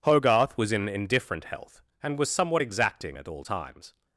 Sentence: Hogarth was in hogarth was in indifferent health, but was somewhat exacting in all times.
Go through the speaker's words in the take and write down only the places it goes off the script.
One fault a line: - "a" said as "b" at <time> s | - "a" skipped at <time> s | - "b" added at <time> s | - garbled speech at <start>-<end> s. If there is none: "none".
- "hogarth was in" skipped at 0.9 s
- "but" said as "and" at 2.0 s
- "in" said as "at" at 3.2 s